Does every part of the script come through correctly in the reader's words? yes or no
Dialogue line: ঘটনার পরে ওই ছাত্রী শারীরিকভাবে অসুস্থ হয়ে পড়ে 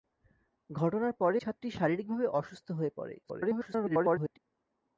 no